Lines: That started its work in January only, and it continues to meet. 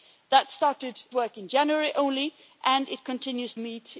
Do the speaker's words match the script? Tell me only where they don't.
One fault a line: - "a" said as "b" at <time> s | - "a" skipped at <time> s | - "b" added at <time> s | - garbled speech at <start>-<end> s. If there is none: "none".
- "its" skipped at 1.0 s
- "to" skipped at 3.5 s